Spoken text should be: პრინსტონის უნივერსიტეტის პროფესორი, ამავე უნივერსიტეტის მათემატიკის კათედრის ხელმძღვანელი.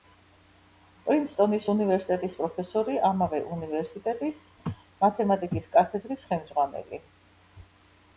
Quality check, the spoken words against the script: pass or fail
pass